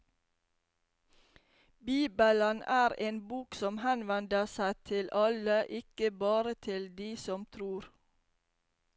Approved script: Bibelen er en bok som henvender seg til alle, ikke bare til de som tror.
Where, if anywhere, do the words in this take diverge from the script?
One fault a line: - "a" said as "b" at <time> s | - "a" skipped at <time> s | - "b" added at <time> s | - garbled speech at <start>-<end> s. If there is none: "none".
none